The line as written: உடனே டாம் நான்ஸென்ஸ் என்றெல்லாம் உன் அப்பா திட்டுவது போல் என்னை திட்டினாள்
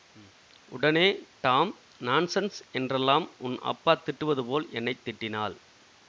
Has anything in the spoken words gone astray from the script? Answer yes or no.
no